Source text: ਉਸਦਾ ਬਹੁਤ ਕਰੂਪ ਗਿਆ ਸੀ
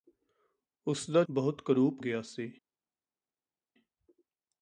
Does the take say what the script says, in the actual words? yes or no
yes